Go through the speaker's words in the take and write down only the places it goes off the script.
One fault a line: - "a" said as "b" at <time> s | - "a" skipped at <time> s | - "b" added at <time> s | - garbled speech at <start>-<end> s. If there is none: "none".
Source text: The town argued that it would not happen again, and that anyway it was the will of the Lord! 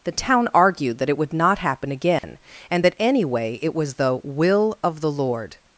none